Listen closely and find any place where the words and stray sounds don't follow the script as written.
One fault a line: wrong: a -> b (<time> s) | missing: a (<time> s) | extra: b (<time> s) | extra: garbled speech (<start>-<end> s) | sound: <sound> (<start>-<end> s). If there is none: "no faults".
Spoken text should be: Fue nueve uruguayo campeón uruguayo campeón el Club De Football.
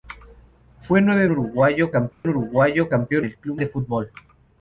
sound: dropout (2.1-2.2 s)